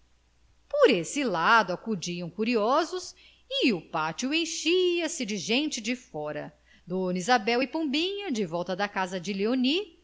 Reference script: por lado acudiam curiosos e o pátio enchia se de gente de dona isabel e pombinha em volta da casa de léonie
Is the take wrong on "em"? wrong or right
wrong